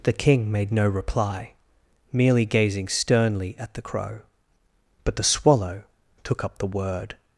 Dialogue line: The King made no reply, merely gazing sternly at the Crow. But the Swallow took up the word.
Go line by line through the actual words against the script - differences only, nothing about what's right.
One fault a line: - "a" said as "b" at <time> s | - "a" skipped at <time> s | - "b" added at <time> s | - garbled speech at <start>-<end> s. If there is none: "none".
none